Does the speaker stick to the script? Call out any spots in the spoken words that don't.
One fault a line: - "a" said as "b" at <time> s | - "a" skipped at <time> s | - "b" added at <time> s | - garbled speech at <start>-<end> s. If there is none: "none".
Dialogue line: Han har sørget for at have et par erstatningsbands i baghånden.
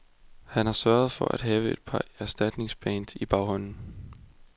none